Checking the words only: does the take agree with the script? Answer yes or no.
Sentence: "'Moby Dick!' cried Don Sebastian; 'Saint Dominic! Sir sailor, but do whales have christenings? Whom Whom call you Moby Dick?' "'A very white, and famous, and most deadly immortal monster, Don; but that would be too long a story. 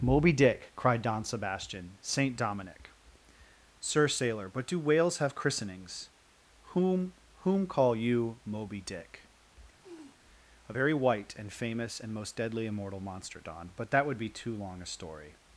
yes